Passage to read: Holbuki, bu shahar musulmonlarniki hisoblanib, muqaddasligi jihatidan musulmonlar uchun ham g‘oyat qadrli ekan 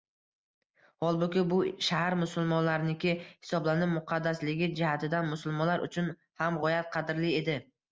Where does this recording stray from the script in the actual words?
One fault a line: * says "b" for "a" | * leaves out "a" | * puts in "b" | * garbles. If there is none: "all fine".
* says "edi" for "ekan"